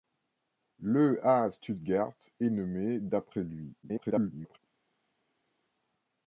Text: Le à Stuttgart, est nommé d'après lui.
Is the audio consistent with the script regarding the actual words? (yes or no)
no